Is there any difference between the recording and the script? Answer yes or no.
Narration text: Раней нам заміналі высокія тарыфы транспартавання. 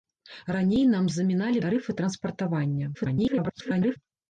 yes